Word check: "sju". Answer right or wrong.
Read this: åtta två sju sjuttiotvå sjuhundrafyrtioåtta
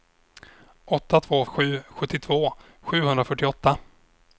right